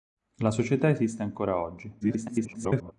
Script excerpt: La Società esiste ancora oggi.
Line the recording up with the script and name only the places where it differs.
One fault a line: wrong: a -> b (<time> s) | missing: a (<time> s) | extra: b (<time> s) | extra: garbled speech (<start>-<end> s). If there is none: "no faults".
extra: garbled speech (2.0-2.9 s)